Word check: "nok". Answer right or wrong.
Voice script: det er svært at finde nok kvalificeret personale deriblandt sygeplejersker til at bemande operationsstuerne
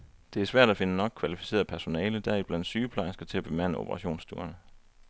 right